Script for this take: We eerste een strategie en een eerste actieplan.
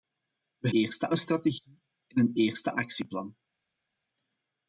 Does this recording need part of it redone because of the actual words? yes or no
no